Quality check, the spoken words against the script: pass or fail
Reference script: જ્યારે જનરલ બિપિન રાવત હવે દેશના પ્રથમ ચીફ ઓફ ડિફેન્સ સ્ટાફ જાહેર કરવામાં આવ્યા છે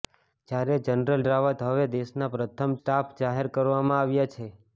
fail